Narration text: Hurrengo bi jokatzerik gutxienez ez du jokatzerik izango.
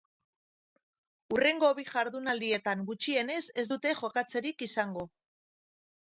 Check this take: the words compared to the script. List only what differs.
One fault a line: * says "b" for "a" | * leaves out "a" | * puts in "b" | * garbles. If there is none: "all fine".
* says "jardunaldietan" for "jokatzerik"
* says "dute" for "du"